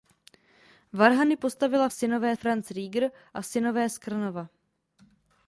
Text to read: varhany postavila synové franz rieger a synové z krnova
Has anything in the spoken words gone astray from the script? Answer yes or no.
no